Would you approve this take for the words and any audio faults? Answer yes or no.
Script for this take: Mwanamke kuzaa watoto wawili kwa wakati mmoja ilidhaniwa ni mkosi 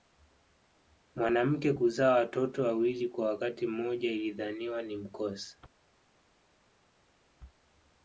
yes